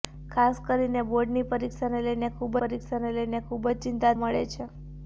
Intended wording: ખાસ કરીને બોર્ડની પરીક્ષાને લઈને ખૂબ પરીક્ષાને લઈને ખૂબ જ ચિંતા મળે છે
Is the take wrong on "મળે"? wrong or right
right